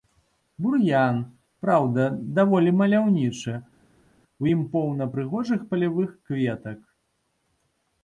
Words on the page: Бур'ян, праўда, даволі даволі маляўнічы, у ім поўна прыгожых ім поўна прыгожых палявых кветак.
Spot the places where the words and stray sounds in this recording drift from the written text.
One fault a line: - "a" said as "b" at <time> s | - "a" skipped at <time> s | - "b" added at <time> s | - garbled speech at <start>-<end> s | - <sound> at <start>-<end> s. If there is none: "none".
- "даволі" skipped at 2.7 s
- "ім поўна прыгожых" skipped at 5.6 s